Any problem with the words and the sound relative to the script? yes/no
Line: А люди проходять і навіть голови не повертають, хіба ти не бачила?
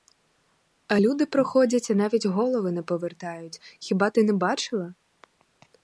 no